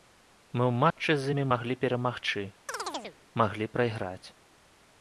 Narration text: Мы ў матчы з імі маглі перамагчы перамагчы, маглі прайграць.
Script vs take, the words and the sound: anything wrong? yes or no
yes